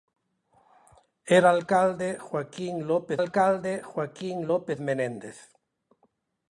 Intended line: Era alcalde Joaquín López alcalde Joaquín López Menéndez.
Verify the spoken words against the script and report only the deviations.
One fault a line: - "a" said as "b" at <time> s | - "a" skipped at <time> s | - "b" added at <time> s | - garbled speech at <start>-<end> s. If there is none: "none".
none